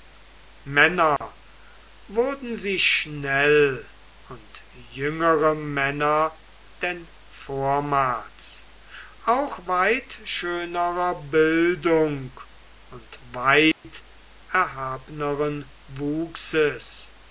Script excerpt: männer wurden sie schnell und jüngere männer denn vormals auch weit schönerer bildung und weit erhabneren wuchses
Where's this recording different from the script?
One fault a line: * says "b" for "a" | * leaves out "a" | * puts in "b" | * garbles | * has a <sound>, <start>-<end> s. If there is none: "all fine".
* has a dropout, 1.2-1.2 s
* has a dropout, 13.7-13.8 s